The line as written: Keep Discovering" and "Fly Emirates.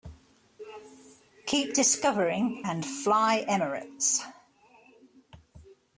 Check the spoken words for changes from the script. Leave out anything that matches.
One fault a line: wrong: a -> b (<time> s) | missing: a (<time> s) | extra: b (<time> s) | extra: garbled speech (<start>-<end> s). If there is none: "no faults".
no faults